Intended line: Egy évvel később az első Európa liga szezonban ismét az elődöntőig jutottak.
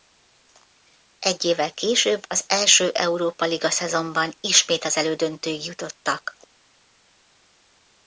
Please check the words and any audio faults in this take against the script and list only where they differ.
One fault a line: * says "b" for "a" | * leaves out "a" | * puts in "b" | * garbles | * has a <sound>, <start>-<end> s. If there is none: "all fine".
all fine